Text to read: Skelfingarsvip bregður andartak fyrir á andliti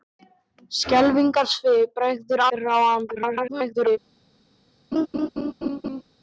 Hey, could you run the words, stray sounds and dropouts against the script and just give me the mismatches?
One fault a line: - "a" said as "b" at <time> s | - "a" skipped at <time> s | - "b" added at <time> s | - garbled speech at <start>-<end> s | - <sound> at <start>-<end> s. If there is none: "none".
- "andartak" skipped at 2.4 s
- garbled speech at 3.1-4.0 s
- laugh at 4.9-6.0 s